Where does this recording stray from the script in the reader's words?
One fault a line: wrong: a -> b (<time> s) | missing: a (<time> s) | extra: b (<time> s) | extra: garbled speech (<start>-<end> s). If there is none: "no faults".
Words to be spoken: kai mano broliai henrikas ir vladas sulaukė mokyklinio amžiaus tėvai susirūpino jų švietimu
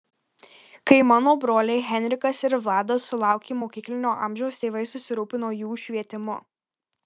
no faults